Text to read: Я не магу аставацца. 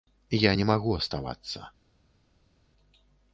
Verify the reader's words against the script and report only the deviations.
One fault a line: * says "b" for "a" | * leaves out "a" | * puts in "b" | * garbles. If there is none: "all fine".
all fine